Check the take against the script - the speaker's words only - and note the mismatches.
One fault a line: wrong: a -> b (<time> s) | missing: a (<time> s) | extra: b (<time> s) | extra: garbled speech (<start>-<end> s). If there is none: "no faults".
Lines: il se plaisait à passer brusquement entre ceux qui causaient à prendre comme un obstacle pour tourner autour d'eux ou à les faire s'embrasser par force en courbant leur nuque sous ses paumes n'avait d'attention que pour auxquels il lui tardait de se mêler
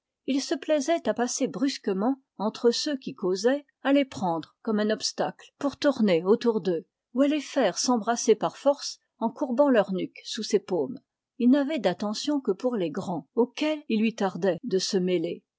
extra: les (3.9 s)
extra: il (11.4 s)
extra: les grands (12.8 s)